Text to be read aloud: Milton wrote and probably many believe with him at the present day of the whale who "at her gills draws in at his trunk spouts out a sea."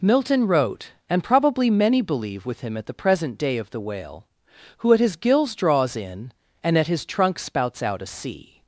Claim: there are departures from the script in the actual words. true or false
true